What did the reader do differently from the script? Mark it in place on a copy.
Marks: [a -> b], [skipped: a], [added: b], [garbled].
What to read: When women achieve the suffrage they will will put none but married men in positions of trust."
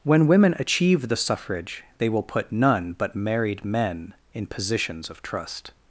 When women achieve the suffrage they will [skipped: will] put none but married men in positions of trust."